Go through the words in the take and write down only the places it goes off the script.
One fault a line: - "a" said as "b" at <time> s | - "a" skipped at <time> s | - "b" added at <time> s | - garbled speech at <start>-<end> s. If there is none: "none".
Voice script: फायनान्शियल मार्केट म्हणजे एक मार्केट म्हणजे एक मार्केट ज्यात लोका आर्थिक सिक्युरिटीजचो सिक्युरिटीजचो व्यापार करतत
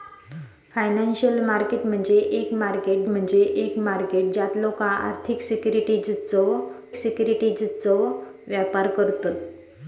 none